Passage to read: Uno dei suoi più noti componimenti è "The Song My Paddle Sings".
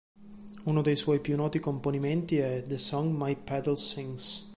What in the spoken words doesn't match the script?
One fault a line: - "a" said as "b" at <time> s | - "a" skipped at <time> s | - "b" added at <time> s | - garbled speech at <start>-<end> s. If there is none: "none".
none